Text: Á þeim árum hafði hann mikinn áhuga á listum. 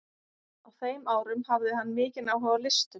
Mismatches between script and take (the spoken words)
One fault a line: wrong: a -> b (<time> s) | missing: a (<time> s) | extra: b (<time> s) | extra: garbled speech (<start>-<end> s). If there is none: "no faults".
no faults